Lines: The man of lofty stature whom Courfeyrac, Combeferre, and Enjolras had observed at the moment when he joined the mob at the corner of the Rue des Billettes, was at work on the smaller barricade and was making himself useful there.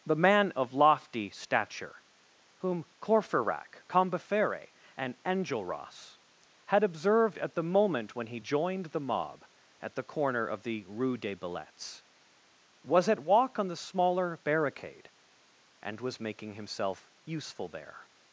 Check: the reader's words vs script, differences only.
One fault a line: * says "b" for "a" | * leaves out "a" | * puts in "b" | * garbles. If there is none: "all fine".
* says "walk" for "work"